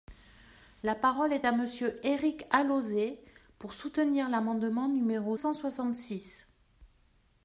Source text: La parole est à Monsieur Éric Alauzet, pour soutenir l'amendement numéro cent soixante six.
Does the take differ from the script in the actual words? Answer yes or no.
no